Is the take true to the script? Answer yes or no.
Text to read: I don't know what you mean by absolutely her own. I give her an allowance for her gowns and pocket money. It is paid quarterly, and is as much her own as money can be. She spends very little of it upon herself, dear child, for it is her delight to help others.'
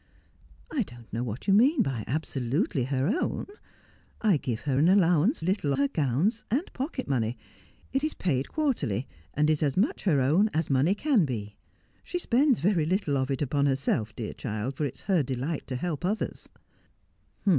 no